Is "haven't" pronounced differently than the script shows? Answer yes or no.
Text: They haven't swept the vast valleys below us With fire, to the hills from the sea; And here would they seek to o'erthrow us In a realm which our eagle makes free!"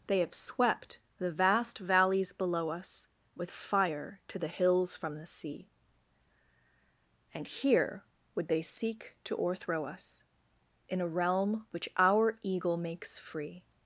yes